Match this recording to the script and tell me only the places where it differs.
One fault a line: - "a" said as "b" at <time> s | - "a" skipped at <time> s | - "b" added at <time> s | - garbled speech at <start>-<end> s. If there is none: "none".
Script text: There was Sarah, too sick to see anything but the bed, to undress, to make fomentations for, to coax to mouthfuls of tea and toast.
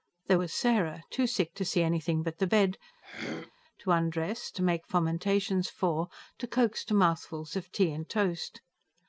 none